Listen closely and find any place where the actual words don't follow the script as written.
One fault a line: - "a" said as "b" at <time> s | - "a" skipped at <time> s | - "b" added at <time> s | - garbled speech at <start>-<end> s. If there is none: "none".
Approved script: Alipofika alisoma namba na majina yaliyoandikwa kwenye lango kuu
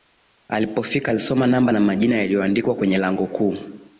none